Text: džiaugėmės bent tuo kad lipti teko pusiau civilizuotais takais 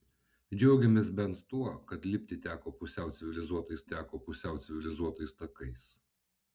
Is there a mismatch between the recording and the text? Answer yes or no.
yes